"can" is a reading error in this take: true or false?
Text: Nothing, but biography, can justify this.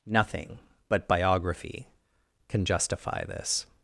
false